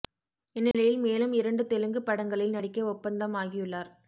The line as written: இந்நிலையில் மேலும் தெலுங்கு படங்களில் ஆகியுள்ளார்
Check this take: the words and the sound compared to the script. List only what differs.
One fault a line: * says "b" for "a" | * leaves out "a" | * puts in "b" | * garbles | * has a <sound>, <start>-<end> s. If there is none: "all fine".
* has a dropout, 0.7-0.7 s
* puts in "இரண்டு"
* puts in "நடிக்க ஒப்பந்தம்"